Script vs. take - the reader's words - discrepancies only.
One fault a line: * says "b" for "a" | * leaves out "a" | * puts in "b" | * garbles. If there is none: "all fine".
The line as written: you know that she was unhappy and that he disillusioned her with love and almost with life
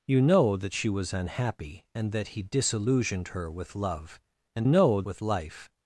* says "know" for "almost"